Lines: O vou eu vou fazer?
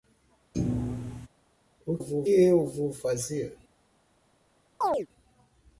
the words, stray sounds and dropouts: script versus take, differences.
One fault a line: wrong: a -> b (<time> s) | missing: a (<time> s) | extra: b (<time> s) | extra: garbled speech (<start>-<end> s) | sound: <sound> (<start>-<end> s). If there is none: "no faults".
sound: thud (0.5-1.3 s)
sound: chirp (4.8-5.1 s)